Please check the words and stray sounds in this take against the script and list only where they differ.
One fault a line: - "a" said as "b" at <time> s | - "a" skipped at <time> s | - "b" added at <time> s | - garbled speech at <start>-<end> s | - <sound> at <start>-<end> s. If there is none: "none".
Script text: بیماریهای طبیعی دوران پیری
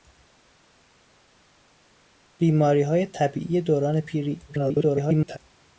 - garbled speech at 4.5-5.4 s